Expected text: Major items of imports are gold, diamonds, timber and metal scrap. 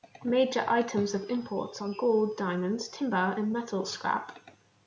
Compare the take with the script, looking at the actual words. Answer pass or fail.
pass